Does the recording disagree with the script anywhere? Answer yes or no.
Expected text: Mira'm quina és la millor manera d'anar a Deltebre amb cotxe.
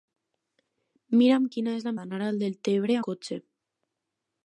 yes